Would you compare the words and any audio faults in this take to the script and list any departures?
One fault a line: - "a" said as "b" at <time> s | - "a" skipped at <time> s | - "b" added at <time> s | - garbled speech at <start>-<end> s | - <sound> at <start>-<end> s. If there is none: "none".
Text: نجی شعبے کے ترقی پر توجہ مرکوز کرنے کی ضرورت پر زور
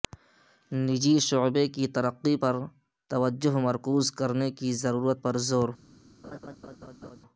- "کے" said as "کی" at 1.8 s
- laugh at 6.2-7.2 s